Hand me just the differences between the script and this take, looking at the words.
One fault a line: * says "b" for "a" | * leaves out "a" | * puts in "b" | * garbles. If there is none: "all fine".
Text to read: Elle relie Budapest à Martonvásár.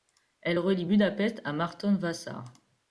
all fine